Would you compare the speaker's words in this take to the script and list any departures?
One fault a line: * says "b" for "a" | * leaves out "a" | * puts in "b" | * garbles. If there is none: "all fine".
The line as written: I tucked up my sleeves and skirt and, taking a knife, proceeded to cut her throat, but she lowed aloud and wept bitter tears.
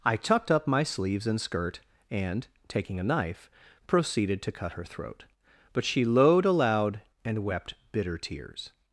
all fine